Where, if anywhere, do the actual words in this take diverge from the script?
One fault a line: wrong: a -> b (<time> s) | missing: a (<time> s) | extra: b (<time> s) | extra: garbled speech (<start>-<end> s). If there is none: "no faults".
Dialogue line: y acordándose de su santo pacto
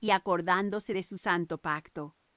no faults